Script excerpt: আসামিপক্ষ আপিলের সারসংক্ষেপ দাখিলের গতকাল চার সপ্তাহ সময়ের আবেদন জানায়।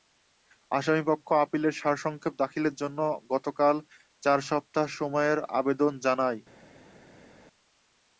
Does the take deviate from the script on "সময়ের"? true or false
false